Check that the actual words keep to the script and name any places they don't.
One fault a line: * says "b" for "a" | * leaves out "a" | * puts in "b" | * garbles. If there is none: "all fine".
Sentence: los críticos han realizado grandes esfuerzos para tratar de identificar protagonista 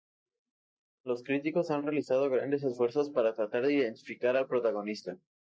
* puts in "al"